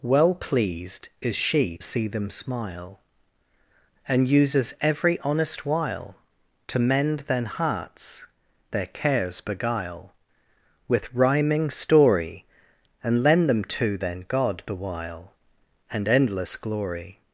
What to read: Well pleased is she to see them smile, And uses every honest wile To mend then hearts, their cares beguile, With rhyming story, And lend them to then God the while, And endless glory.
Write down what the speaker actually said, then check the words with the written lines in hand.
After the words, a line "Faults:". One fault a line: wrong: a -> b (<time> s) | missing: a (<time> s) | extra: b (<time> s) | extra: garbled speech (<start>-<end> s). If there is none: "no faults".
Well pleased is she see them smile, And uses every honest wile To mend then hearts, their cares beguile, With rhyming story, And lend them to then God the while, And endless glory.
Faults:
missing: to (1.8 s)